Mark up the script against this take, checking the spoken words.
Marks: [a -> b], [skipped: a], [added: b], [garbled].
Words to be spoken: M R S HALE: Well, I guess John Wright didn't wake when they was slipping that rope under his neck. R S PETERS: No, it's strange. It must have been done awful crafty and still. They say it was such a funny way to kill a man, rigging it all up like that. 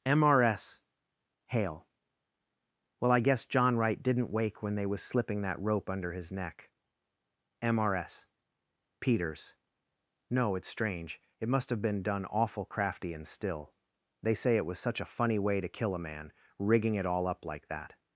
M R S HALE: Well, I guess John Wright didn't wake when they was slipping that rope under his neck. [added: M] R S PETERS: No, it's strange. It must have been done awful crafty and still. They say it was such a funny way to kill a man, rigging it all up like that.